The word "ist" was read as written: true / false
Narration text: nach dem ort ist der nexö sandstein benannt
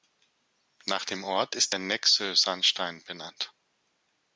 true